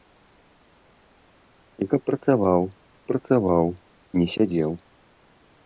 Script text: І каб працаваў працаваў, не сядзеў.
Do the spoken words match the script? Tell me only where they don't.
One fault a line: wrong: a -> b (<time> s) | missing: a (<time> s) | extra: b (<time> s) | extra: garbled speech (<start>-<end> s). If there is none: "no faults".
no faults